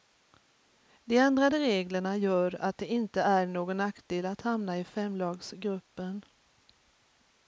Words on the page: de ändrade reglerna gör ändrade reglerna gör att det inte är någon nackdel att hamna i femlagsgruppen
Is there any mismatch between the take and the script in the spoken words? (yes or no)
yes